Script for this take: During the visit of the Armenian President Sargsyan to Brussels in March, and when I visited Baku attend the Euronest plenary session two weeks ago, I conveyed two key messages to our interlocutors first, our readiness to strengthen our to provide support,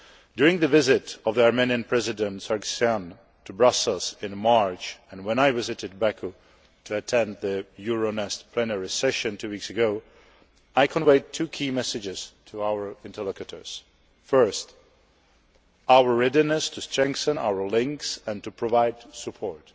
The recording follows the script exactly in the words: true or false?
false